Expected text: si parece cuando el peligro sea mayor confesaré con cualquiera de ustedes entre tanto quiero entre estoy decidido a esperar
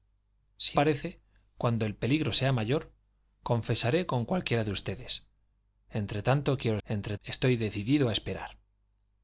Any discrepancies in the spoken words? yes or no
no